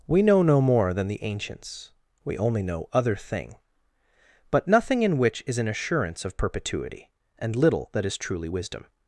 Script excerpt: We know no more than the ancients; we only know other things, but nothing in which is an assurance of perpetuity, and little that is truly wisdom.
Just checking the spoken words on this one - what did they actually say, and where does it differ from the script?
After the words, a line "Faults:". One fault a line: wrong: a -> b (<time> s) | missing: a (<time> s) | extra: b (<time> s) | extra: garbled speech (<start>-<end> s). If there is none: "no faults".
We know no more than the ancients; we only know other thing, but nothing in which is an assurance of perpetuity, and little that is truly wisdom.
Faults:
wrong: things -> thing (3.1 s)